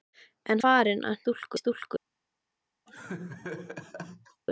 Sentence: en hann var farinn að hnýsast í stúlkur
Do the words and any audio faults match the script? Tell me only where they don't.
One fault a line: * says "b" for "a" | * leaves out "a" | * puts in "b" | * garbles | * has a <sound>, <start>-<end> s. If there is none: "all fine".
* leaves out "hann var"
* says "stúlkur" for "hnýsast"
* has a laugh, 2.9-4.4 s